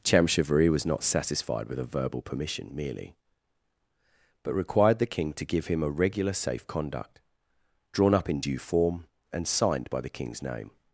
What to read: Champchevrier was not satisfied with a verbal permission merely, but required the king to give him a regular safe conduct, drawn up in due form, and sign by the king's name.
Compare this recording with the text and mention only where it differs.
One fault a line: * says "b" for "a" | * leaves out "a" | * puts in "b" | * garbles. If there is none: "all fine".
* says "signed" for "sign"